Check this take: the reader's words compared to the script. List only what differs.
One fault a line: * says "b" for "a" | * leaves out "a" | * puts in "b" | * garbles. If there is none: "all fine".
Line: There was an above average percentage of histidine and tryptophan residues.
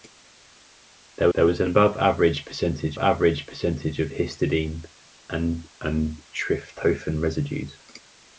* puts in "there"
* puts in "average percentage"
* puts in "and"